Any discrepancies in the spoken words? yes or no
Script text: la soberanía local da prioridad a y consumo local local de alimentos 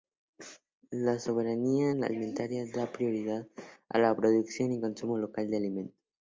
yes